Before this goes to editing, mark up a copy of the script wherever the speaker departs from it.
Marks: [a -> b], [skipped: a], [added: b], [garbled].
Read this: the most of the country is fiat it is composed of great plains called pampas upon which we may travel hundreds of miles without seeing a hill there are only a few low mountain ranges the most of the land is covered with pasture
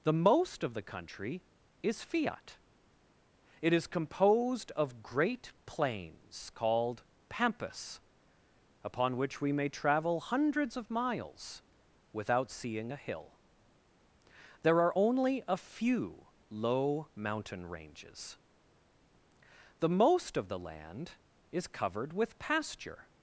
the most of the country is fiat it is composed of great plains called pampas upon which we may travel hundreds of miles without seeing a hill there are only a few low mountain ranges the most of the land is covered with pasture